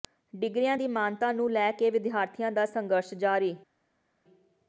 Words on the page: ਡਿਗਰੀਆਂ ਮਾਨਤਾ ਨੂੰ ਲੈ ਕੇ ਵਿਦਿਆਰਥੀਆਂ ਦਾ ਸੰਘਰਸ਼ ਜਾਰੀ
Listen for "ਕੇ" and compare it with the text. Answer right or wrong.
right